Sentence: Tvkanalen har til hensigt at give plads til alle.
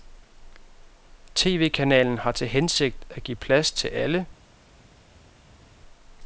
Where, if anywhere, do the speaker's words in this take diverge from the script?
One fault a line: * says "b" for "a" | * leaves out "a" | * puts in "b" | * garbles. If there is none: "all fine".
all fine